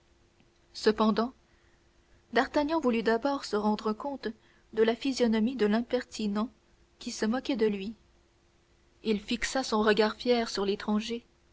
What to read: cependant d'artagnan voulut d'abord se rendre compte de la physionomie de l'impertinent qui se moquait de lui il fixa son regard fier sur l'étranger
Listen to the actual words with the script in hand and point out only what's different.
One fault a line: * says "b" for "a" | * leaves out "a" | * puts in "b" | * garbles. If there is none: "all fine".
all fine